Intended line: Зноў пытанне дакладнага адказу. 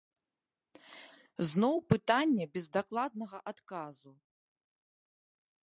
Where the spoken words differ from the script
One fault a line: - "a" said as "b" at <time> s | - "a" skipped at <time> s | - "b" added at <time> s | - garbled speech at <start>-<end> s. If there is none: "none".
- "без" added at 2.5 s